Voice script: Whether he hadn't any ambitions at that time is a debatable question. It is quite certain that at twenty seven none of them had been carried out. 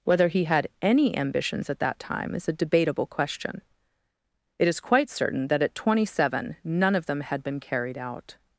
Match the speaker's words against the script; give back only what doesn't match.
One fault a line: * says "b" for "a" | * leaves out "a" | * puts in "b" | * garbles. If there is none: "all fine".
* says "had" for "hadn't"